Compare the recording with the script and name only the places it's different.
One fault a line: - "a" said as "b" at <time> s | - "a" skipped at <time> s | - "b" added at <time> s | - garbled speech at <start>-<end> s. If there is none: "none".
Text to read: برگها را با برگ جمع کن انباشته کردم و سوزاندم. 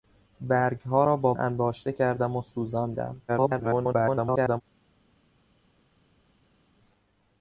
- "برگ جمع کن" skipped at 1.3 s
- garbled speech at 3.3-4.6 s